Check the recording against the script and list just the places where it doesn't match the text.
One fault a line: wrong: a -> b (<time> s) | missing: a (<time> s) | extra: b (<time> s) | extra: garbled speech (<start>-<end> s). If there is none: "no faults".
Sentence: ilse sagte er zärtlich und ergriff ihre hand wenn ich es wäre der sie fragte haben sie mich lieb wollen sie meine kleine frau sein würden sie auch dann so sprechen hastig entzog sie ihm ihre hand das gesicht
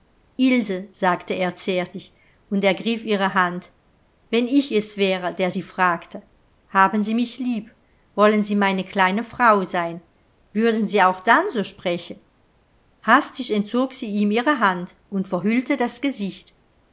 extra: und verhüllte (15.1 s)